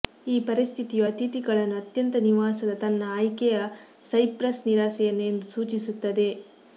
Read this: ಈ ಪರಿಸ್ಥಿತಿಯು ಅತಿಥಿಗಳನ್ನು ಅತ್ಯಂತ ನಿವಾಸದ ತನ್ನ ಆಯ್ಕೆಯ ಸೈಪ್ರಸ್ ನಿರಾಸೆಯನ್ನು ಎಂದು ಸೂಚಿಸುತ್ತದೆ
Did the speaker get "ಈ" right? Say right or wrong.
right